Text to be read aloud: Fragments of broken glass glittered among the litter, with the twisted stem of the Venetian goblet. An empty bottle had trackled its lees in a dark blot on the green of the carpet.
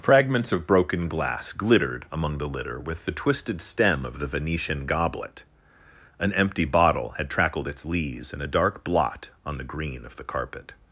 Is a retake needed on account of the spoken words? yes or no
no